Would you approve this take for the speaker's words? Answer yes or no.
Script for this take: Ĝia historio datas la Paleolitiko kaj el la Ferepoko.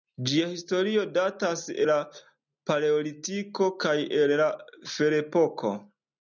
yes